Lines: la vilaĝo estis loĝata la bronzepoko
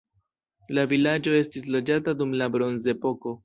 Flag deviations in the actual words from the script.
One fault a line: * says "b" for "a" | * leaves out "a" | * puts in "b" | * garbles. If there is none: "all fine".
* puts in "dum"